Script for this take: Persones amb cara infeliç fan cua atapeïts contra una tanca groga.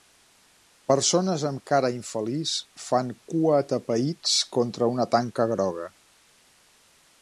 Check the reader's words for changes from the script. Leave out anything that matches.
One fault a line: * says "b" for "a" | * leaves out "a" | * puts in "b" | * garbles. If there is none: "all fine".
all fine